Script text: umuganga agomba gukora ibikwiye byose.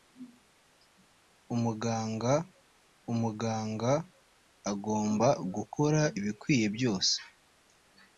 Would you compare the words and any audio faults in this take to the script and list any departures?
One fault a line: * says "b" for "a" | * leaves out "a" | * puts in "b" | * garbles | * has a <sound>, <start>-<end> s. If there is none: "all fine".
* puts in "umuganga"